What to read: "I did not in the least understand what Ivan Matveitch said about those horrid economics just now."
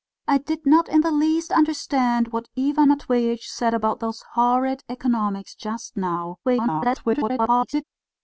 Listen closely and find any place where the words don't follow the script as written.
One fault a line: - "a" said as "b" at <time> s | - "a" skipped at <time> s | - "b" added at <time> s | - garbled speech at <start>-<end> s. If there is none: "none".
- garbled speech at 6.4-7.8 s